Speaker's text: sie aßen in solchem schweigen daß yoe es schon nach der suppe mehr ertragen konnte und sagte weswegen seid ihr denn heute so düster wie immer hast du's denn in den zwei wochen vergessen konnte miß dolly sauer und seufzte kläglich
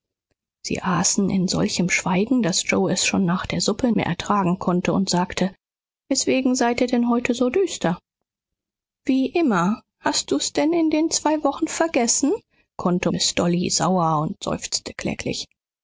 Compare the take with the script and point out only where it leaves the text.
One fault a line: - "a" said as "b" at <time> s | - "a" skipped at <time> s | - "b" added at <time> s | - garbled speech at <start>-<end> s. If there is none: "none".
none